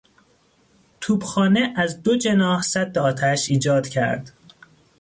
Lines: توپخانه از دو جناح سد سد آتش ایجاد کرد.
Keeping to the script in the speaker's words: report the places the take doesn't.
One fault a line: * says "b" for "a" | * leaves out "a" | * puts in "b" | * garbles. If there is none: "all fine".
* leaves out "سد"